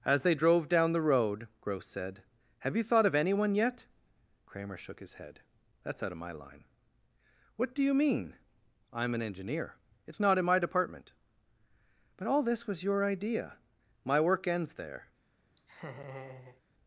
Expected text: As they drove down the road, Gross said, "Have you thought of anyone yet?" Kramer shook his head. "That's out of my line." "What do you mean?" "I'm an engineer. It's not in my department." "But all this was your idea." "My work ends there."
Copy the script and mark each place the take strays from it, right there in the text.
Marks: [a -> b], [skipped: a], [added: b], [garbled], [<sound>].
As they drove down the road, Gross said, "Have you thought of anyone yet?" Kramer shook his head. "That's out of my line." "What do you mean?" "I'm an engineer. It's not in my department." "But all this was your idea." "My work ends there." [laugh]